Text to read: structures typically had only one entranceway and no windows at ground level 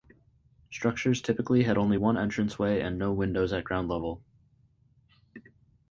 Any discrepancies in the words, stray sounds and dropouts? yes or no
no